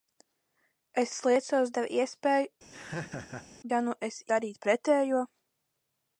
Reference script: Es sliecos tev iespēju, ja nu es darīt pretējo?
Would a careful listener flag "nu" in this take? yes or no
no